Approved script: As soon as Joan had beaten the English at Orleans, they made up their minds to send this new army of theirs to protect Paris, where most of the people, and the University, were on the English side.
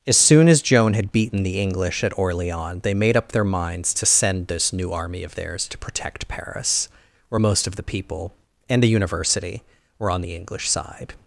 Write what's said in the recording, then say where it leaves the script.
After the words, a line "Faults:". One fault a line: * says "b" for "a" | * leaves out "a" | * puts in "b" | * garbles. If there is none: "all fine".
As soon as Joan had beaten the English at Orleans, they made up their minds to send this new army of theirs to protect Paris, where most of the people, and the University, were on the English side.
Faults:
all fine